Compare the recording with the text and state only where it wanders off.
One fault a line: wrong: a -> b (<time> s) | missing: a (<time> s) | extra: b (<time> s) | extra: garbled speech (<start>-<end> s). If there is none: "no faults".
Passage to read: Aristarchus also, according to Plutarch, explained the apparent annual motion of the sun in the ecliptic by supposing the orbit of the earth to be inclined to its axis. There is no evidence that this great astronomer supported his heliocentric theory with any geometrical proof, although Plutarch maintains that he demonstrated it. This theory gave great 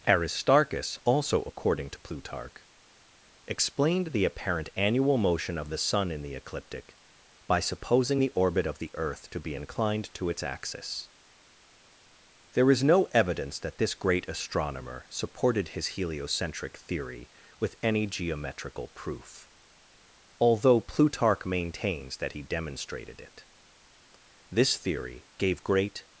no faults